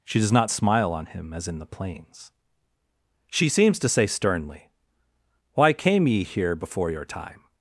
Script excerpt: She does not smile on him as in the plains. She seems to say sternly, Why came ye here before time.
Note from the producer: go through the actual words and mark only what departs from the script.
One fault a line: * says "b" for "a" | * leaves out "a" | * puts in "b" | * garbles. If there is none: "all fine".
* puts in "your"